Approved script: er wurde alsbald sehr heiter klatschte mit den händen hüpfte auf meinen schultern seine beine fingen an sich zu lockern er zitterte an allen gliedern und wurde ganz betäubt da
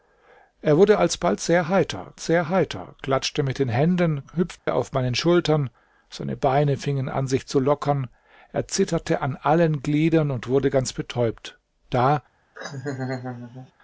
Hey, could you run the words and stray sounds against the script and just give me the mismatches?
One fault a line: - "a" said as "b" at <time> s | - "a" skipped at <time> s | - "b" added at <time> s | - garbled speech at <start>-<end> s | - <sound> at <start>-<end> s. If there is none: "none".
- "sehr heiter" added at 2.2 s
- dropout at 4.6-4.7 s
- laugh at 12.5-13.7 s